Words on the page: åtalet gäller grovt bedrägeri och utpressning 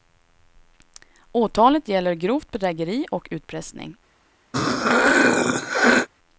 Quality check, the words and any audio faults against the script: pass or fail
fail